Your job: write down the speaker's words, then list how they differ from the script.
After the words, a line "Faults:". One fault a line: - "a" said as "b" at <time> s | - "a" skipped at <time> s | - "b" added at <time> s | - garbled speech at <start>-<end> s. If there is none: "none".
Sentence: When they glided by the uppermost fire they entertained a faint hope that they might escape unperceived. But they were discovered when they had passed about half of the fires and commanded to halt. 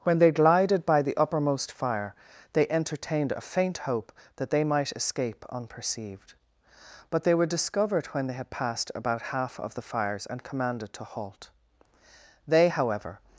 When they glided by the uppermost fire they entertained a faint hope that they might escape unperceived. But they were discovered when they had passed about half of the fires and commanded to halt. They however
Faults:
- "They however" added at 12.5 s